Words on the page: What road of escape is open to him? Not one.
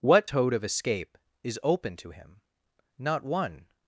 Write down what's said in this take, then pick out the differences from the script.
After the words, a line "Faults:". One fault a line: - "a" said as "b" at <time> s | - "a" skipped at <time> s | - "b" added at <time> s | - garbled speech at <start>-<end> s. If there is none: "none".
What toad of escape is open to him? Not one.
Faults:
- "road" said as "toad" at 0.3 s